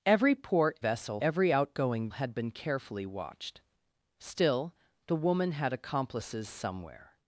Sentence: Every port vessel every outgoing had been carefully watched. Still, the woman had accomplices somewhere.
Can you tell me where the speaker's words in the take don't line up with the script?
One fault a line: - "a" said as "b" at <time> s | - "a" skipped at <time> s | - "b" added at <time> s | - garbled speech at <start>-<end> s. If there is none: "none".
none